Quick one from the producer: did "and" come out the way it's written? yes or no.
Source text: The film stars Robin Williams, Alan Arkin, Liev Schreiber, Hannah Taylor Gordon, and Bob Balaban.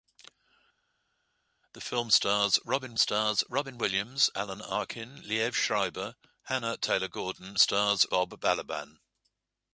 no